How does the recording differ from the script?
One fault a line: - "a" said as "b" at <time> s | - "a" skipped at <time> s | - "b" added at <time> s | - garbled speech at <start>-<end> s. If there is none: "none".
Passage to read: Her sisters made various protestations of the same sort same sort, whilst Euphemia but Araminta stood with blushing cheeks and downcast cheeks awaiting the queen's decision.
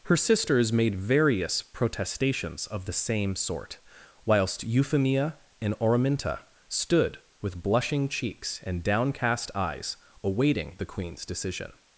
- "same sort" skipped at 3.8 s
- "but" said as "and" at 5.6 s
- "cheeks" said as "eyes" at 9.5 s